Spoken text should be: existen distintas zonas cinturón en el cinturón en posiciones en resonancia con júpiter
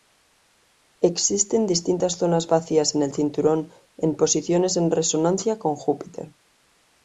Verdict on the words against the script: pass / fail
fail